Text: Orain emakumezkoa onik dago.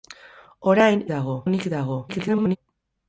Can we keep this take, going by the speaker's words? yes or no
no